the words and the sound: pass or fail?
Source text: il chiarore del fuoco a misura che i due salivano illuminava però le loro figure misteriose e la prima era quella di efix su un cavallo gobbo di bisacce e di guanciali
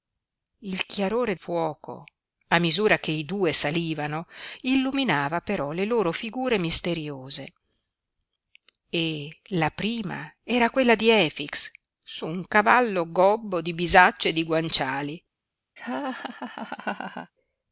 fail